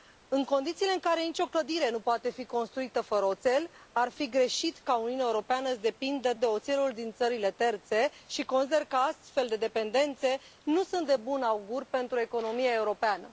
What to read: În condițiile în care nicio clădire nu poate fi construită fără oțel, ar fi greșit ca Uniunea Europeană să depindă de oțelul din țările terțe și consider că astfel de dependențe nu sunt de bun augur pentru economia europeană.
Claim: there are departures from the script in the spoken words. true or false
false